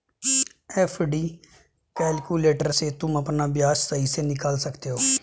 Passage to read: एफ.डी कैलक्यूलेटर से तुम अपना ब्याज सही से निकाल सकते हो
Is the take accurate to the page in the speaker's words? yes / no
yes